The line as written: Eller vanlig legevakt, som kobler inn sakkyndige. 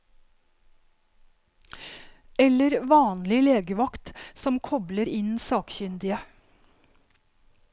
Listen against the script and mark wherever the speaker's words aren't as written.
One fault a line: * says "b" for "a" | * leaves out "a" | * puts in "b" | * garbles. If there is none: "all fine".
all fine